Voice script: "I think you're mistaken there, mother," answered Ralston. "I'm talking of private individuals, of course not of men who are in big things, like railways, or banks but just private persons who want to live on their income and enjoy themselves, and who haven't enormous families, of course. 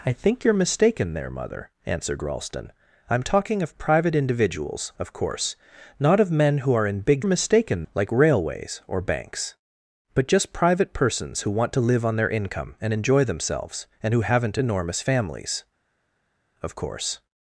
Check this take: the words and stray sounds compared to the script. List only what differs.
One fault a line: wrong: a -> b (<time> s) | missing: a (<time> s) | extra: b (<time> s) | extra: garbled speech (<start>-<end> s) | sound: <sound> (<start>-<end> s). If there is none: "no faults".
wrong: things -> mistaken (7.2 s)